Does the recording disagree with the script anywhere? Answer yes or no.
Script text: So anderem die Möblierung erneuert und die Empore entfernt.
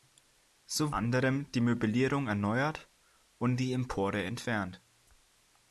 no